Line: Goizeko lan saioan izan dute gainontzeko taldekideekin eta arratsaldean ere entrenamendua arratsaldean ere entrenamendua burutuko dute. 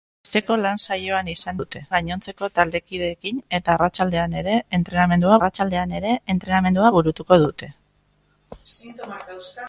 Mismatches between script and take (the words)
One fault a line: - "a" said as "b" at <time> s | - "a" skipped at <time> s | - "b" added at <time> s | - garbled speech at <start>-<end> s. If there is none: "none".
none